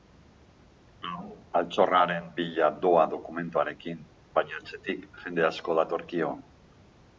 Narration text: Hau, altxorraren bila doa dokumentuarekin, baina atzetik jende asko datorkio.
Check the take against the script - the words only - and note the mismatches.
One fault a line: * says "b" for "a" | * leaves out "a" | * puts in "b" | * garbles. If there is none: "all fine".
all fine